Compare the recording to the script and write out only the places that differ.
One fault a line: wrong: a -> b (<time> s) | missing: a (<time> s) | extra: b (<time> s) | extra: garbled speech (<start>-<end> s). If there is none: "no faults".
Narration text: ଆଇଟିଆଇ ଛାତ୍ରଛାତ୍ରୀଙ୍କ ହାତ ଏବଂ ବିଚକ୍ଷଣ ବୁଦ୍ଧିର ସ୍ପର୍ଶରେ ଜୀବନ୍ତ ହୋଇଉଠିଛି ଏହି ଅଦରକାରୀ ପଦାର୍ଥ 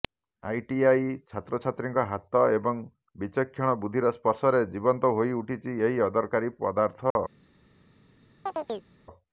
no faults